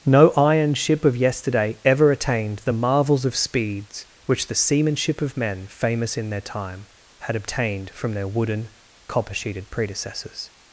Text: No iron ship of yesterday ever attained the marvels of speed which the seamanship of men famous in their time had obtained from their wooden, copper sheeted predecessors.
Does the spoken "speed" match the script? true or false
false